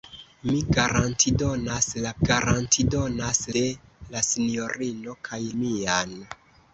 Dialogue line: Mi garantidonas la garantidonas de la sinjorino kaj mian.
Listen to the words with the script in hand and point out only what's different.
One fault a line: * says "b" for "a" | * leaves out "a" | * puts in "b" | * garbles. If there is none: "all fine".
all fine